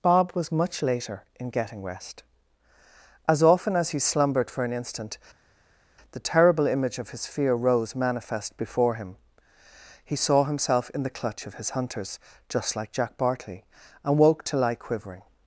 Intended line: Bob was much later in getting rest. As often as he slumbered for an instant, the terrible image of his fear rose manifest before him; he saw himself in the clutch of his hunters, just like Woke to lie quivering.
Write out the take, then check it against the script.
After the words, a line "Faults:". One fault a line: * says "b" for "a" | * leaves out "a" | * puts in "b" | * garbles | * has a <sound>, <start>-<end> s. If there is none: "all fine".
Bob was much later in getting rest. As often as he slumbered for an instant, the terrible image of his fear rose manifest before him; he saw himself in the clutch of his hunters, just like Jack Bartley, and woke to lie quivering.
Faults:
* puts in "Jack Bartley and"